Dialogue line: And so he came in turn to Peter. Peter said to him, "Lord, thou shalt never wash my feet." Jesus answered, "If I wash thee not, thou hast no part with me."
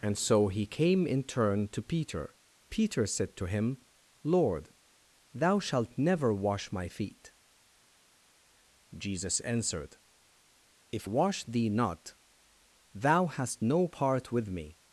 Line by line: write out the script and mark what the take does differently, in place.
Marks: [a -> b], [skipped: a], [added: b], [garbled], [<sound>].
And so he came in turn to Peter. Peter said to him, "Lord, thou shalt never wash my feet." Jesus answered, "If [skipped: I] wash thee not, thou hast no part with me."